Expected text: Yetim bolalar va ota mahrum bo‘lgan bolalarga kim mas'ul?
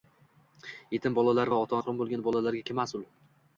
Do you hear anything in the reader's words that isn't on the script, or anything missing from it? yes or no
no